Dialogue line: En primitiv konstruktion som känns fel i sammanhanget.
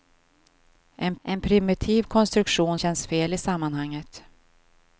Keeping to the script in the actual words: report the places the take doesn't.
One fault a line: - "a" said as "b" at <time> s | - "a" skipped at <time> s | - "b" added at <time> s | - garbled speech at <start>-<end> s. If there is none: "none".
- "en" added at 1.2 s
- "som" skipped at 2.8 s